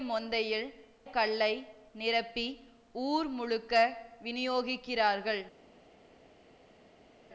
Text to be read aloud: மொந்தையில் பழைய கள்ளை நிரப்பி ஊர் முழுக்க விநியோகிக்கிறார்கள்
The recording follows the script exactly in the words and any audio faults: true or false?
false